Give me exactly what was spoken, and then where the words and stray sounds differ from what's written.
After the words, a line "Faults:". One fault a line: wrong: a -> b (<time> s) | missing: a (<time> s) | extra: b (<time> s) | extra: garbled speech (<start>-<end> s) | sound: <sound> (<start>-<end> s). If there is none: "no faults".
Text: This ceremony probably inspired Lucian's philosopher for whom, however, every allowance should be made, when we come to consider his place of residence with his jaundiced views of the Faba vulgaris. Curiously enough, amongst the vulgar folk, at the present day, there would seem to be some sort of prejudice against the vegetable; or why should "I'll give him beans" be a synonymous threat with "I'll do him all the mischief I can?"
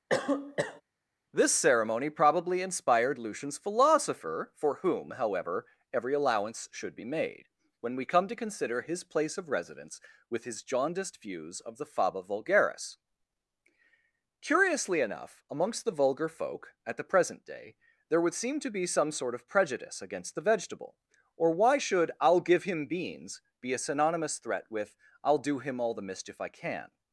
This ceremony probably inspired Lucian's philosopher for whom, however, every allowance should be made, when we come to consider his place of residence with his jaundiced views of the Faba vulgaris. Curiously enough, amongst the vulgar folk, at the present day, there would seem to be some sort of prejudice against the vegetable; or why should "I'll give him beans" be a synonymous threat with "I'll do him all the mischief I can?"
Faults:
sound: cough (0.1-0.8 s)